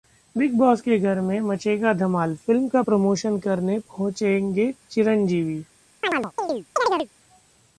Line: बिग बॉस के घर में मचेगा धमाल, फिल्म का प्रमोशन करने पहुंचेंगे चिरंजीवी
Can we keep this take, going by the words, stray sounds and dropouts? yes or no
no